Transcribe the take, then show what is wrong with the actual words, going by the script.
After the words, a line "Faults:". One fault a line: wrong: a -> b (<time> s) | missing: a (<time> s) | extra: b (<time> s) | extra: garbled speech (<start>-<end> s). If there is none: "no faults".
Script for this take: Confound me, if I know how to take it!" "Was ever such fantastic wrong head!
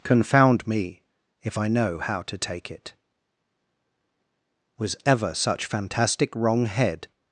Confound me, if I know how to take it!" "Was ever such fantastic wrong head!
Faults:
no faults